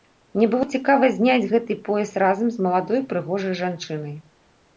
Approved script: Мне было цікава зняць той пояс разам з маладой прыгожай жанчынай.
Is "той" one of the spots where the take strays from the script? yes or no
yes